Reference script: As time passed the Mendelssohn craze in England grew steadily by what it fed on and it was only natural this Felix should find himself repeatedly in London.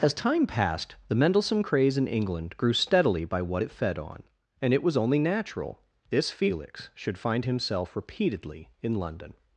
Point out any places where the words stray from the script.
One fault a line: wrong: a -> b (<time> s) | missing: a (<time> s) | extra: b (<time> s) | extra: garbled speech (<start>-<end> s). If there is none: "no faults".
no faults